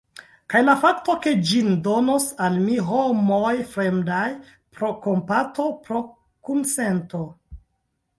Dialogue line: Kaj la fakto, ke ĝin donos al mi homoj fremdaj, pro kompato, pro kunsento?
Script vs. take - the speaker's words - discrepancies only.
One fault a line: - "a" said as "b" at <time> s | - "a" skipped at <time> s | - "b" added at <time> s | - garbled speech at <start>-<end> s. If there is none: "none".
none